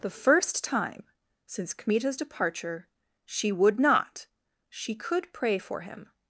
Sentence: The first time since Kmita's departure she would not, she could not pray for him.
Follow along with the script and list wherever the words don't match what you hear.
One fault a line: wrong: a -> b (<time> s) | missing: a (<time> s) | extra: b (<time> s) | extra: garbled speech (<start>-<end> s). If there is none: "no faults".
missing: not (5.3 s)